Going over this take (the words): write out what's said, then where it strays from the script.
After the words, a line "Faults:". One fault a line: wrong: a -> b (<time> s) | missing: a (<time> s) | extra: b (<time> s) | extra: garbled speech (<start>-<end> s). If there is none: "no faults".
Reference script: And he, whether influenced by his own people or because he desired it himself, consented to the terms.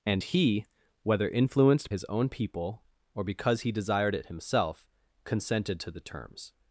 And he, whether influenced his own people or because he desired it himself, consented to the terms.
Faults:
missing: by (1.9 s)